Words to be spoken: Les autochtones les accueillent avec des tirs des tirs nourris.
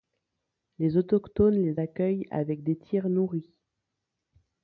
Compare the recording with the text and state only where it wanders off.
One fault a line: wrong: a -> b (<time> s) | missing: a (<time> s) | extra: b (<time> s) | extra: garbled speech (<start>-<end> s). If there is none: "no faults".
missing: des tirs (3.1 s)